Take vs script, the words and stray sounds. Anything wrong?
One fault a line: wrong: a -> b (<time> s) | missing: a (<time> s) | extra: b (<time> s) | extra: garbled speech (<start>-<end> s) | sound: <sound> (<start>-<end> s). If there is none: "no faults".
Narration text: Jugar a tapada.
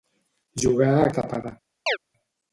sound: chirp (1.9-2.0 s)